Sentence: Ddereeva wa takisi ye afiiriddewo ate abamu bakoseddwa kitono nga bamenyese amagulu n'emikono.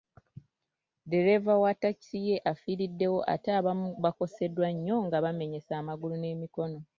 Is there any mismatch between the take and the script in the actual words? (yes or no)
yes